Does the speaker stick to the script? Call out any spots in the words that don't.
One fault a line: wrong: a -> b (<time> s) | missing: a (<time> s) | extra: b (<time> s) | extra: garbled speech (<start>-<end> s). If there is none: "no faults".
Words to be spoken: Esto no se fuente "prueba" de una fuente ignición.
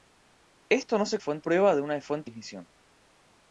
no faults